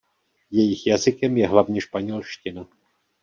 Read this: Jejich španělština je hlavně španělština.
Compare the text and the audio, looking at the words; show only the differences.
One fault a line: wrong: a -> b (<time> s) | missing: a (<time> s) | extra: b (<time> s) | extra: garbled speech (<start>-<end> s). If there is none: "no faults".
wrong: španělština -> jazykem (0.9 s)